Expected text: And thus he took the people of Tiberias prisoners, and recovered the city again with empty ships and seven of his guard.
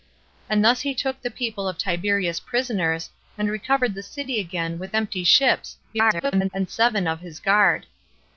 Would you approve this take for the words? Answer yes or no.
no